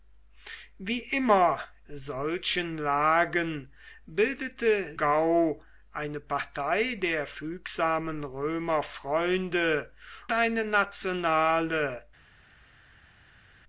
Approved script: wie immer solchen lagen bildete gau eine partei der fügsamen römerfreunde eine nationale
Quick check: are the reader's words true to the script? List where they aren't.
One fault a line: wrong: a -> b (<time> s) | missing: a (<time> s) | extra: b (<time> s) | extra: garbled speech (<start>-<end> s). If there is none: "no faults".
no faults